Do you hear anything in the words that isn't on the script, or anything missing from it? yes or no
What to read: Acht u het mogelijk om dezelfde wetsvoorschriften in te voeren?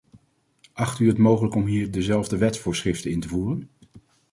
yes